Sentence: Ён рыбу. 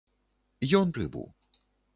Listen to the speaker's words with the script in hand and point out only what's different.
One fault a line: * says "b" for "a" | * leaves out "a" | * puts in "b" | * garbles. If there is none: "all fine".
all fine